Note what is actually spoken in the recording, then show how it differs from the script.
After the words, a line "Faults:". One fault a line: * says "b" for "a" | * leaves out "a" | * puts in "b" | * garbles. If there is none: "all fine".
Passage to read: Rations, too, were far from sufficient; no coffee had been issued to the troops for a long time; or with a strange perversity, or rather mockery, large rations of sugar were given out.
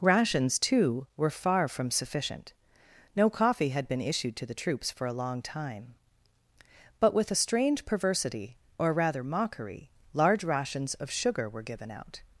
Rations, too, were far from sufficient; no coffee had been issued to the troops for a long time; but with a strange perversity, or rather mockery, large rations of sugar were given out.
Faults:
* says "but" for "or"